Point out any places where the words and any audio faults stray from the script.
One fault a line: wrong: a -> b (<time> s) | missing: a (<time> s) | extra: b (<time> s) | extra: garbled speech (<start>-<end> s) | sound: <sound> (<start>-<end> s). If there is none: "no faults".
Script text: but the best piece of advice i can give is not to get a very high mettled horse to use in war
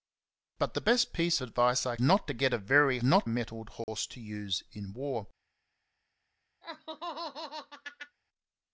missing: of (1.4 s)
missing: can give is (2.0 s)
wrong: high -> not (3.0 s)
sound: dropout (3.8-3.9 s)
sound: laugh (6.6-8.2 s)